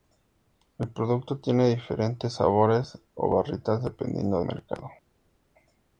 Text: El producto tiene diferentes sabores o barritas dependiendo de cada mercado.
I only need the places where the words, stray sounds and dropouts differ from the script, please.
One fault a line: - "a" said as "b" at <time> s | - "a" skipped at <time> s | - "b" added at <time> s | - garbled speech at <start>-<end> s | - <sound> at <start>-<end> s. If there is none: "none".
- "de cada" skipped at 4.4 s